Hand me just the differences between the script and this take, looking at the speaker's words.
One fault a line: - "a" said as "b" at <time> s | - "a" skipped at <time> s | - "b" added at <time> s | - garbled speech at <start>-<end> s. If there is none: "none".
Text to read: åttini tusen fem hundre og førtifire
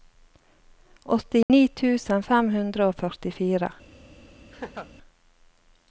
none